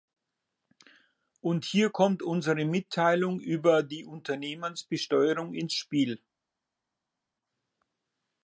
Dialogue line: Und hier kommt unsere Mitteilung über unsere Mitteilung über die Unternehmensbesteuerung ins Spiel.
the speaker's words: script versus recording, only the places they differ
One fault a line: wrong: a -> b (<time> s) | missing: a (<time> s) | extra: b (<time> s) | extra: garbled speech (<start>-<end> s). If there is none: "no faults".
missing: unsere Mitteilung über (3.8 s)